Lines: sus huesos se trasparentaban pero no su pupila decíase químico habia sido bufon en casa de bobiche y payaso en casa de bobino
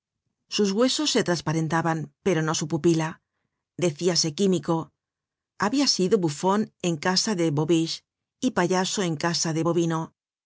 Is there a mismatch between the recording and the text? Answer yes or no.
no